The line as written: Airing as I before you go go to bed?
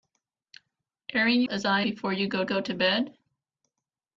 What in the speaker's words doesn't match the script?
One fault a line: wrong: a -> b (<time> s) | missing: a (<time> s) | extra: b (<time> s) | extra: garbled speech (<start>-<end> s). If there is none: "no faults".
no faults